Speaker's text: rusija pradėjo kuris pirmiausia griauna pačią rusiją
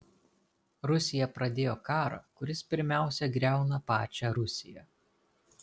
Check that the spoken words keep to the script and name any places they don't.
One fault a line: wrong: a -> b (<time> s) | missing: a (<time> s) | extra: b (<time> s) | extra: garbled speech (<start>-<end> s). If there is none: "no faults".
extra: karą (1.9 s)